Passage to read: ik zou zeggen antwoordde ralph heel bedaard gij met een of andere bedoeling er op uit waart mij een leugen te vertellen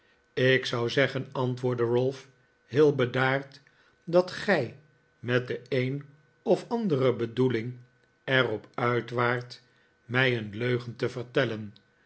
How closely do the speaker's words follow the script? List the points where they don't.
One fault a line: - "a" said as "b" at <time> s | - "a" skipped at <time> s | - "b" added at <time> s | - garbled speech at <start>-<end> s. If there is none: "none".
- "dat" added at 4.0 s
- "de" added at 5.5 s